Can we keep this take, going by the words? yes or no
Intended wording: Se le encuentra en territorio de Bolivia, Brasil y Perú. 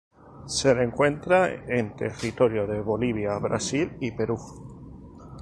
yes